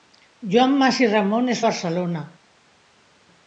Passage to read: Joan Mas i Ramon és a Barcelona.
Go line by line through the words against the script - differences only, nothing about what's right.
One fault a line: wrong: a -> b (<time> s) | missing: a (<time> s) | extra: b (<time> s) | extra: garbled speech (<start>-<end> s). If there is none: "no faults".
no faults